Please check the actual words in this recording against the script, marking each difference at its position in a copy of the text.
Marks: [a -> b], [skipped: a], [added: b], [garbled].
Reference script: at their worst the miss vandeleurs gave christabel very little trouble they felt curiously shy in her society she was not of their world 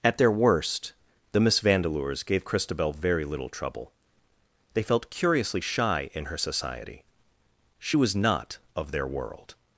at their worst the miss vandeleurs gave christabel very little trouble they felt curiously shy in her society she was not of their world